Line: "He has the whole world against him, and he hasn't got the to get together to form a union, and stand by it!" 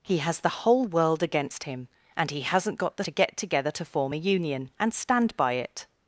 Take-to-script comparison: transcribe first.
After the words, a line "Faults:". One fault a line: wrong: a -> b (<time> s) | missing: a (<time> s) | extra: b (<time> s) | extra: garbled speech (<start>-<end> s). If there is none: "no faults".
"He has the whole world against him, and he hasn't got the to get together to form a union, and stand by it!"
Faults:
no faults